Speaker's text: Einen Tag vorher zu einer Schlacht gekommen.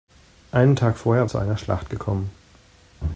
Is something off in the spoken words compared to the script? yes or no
no